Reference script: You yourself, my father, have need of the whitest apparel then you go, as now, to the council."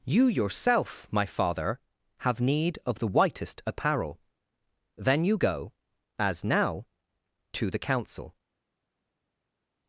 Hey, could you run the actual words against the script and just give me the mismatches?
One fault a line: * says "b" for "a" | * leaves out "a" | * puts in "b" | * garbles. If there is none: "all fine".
all fine